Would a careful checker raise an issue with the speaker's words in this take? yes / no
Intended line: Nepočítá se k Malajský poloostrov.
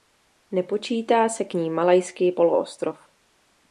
yes